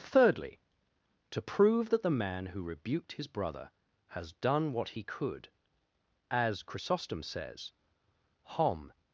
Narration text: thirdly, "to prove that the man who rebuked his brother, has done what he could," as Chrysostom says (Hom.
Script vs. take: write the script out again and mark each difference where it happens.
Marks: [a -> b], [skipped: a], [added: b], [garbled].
thirdly, "to prove that the man who rebuked his brother, has done what he could," as Chrysostom says (Hom.